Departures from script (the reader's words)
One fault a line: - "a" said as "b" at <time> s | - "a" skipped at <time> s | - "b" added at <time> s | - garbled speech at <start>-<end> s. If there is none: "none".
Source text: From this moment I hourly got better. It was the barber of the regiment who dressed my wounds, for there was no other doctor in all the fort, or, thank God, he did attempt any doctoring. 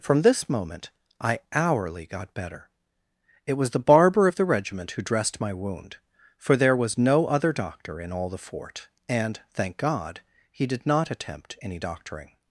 - "wounds" said as "wound" at 5.5 s
- "or" said as "and" at 9.1 s
- "not" added at 10.9 s